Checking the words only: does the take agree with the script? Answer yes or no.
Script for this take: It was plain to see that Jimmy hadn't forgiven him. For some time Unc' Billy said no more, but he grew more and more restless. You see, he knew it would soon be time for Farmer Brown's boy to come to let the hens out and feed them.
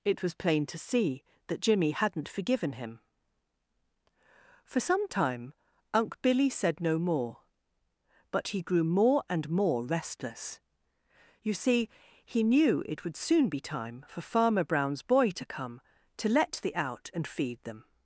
no